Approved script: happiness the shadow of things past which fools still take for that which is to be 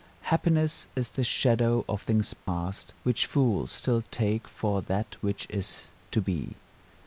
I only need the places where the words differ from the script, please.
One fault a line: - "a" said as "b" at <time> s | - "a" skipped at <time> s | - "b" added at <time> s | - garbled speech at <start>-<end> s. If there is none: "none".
- "is" added at 0.9 s